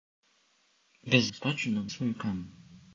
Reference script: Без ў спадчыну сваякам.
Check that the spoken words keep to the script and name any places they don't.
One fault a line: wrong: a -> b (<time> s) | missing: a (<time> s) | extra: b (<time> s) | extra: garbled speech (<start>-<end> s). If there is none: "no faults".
no faults